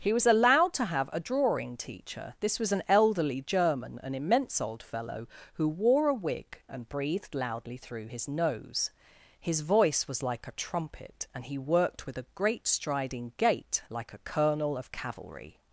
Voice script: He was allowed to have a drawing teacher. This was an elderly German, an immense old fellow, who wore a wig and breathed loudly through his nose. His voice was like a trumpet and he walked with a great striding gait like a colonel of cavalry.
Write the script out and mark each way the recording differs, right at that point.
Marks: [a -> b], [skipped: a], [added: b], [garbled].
He was allowed to have a drawing teacher. This was an elderly German, an immense old fellow, who wore a wig and breathed loudly through his nose. His voice was like a trumpet and he [walked -> worked] with a great striding gait like a colonel of cavalry.